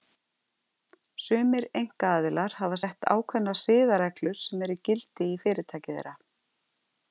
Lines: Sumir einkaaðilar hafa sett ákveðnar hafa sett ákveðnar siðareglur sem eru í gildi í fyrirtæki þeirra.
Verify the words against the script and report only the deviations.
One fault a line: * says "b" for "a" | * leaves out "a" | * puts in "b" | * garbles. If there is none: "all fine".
* leaves out "hafa sett ákveðnar"